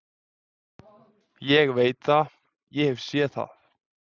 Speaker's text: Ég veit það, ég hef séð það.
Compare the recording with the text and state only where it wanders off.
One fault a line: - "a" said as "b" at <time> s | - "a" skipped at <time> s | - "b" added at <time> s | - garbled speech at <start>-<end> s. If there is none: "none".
none